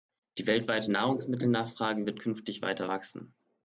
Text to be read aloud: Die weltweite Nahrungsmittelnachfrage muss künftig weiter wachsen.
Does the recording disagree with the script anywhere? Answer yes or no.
yes